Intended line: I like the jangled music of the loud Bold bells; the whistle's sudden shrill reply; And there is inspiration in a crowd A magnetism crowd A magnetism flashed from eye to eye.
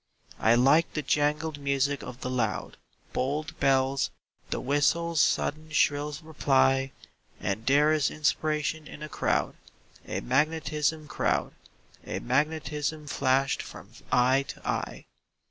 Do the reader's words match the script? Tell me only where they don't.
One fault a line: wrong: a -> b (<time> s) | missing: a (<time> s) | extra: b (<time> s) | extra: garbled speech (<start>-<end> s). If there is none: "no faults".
no faults